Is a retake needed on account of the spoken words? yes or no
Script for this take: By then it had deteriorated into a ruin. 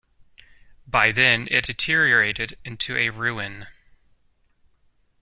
yes